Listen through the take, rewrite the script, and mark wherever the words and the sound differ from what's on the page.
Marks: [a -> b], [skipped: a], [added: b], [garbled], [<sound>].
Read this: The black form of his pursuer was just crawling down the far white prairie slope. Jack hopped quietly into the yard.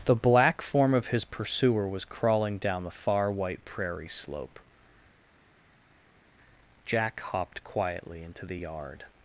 The black form of his pursuer was [skipped: just] crawling down the far white prairie slope. Jack hopped quietly into the yard.